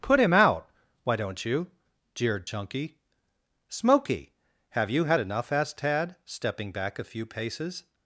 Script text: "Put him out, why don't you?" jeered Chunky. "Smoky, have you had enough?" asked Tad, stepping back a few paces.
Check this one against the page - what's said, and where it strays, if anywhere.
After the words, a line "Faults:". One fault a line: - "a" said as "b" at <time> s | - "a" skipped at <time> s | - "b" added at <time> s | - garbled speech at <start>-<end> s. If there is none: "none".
"Put him out, why don't you?" jeered Chunky. "Smoky, have you had enough?" asked Tad, stepping back a few paces.
Faults:
none